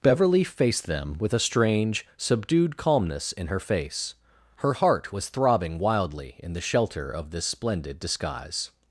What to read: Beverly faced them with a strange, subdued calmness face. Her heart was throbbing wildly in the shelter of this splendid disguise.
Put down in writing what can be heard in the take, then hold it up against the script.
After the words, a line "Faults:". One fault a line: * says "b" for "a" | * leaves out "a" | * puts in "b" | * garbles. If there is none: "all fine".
Beverly faced them with a strange, subdued calmness in her face. Her heart was throbbing wildly in the shelter of this splendid disguise.
Faults:
* puts in "in her"